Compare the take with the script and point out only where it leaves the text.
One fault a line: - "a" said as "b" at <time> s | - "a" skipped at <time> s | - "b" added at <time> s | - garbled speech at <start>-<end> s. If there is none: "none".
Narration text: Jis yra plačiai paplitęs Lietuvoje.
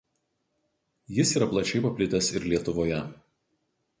- "ir" added at 2.4 s